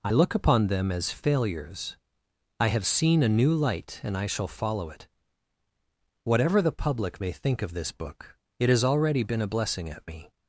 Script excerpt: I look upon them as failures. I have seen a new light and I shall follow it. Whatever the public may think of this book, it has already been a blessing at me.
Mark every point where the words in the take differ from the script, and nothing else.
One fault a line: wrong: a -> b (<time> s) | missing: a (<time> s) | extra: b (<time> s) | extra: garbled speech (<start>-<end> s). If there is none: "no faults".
no faults